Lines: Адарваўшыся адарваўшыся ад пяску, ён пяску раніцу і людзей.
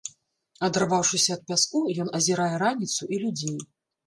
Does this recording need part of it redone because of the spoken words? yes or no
yes